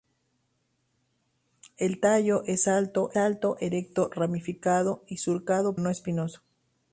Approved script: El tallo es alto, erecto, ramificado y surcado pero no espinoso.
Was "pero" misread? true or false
true